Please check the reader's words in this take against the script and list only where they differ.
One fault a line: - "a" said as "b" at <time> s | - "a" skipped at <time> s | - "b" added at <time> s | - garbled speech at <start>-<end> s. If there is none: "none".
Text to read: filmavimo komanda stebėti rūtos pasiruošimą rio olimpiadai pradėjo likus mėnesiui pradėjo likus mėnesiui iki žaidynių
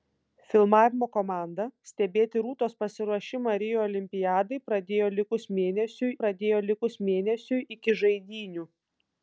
none